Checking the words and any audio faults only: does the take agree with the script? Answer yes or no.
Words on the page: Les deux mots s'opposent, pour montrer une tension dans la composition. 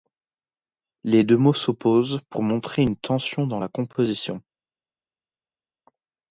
yes